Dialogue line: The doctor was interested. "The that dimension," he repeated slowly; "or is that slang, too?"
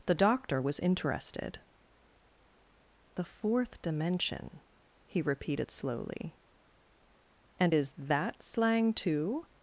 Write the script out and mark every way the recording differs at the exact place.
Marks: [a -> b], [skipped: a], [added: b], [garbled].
The doctor was interested. "The [that -> fourth] dimension," he repeated slowly; ["or -> and] is that slang, too?"